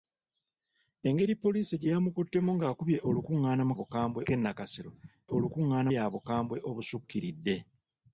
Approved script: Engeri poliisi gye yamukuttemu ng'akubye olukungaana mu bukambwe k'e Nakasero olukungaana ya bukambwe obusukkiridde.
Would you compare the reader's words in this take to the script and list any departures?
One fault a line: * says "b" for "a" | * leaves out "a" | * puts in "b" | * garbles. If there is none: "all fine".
all fine